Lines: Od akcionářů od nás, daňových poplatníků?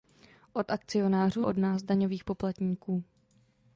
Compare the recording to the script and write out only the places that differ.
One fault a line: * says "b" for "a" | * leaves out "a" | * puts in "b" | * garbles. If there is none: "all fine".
all fine